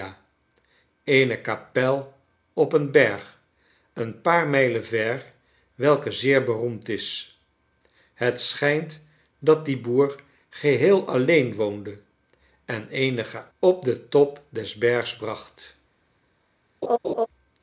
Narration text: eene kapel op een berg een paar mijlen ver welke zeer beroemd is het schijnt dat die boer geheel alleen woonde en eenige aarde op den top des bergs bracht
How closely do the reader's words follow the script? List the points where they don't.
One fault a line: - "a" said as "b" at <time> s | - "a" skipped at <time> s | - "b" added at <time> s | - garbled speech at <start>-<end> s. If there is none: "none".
- "aarde" skipped at 13.4 s